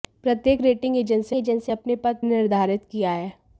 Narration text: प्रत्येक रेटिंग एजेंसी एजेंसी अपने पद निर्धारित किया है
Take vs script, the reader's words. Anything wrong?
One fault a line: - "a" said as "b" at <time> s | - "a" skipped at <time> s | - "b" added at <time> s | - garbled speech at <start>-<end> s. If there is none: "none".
none